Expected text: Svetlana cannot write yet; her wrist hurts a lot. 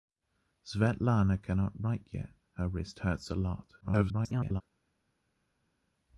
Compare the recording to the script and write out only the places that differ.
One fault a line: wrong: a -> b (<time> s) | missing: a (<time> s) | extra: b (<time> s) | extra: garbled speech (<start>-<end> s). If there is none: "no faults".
extra: garbled speech (3.8-4.6 s)